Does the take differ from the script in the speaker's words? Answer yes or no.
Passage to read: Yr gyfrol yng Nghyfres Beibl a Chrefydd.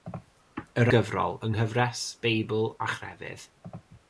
no